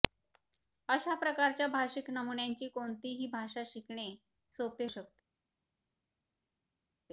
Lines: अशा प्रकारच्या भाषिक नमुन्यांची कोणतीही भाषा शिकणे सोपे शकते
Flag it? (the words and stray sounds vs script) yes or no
no